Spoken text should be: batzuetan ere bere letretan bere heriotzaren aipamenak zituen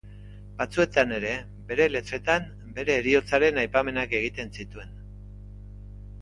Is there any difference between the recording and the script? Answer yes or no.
yes